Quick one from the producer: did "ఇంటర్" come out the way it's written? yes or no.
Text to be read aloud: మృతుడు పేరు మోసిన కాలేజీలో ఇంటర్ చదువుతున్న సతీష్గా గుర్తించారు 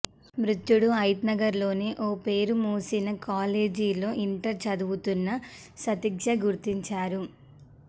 yes